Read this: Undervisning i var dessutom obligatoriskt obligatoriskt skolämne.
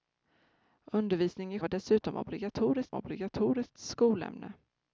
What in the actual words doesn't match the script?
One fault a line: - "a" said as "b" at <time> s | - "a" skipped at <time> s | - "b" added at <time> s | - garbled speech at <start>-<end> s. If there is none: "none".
none